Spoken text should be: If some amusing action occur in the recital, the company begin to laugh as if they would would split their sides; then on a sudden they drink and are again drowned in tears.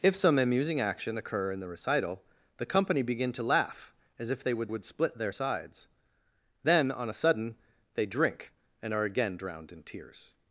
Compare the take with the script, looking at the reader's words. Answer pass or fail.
pass